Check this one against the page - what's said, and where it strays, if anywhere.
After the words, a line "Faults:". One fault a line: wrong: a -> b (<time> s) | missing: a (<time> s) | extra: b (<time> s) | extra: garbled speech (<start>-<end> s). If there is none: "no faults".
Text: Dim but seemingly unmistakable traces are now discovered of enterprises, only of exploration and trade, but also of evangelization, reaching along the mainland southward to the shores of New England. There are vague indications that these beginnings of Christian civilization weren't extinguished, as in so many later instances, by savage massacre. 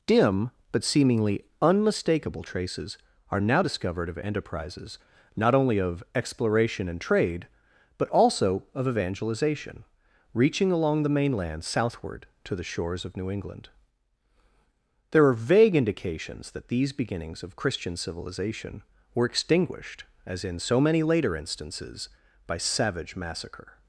Dim but seemingly unmistakable traces are now discovered of enterprises, not only of exploration and trade, but also of evangelization, reaching along the mainland southward to the shores of New England. There are vague indications that these beginnings of Christian civilization were extinguished, as in so many later instances, by savage massacre.
Faults:
extra: not (5.4 s)
wrong: weren't -> were (19.1 s)